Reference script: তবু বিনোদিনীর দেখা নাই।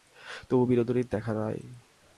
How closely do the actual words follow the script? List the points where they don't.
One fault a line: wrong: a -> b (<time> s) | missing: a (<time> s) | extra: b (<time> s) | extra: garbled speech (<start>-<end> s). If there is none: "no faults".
no faults